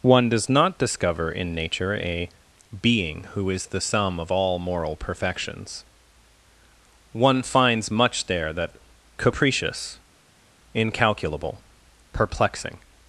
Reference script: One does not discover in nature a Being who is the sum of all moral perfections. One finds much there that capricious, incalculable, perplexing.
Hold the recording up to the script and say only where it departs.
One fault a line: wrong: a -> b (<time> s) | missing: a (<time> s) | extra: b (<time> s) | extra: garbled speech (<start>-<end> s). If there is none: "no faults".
no faults